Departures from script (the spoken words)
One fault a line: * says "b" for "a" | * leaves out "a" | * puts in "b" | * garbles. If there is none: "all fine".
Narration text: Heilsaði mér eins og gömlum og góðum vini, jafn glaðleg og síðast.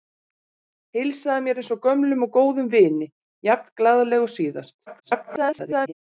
* garbles